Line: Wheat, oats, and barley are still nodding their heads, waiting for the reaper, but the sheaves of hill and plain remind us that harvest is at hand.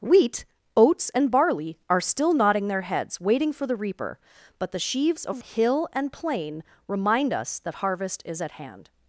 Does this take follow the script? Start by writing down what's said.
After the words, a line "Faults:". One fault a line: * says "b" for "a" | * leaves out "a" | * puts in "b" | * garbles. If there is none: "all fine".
Wheat, oats, and barley are still nodding their heads, waiting for the reaper, but the sheaves of hill and plain remind us that harvest is at hand.
Faults:
all fine